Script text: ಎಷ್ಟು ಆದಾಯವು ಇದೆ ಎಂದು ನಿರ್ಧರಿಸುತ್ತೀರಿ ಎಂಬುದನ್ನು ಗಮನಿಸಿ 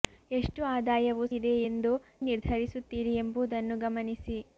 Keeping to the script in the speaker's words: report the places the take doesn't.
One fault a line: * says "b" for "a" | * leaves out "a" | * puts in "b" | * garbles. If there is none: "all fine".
all fine